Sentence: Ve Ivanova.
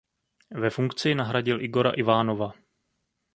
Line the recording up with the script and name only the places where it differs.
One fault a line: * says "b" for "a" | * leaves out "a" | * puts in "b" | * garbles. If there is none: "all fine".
* puts in "funkci nahradil Igora"